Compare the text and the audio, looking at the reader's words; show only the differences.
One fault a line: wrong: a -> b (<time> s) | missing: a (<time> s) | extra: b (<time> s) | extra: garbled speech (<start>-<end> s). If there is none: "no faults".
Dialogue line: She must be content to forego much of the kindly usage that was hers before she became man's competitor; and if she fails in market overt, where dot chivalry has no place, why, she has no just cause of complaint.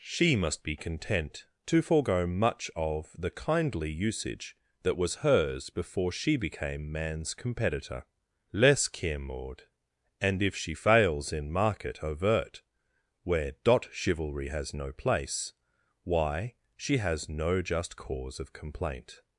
extra: less care maud (8.5 s)